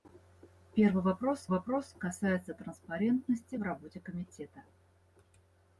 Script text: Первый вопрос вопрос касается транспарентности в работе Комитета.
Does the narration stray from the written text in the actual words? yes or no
no